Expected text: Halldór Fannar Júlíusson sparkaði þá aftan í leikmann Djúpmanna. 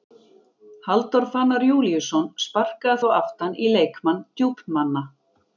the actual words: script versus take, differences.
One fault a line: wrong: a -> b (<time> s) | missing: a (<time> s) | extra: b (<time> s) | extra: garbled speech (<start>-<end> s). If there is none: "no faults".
no faults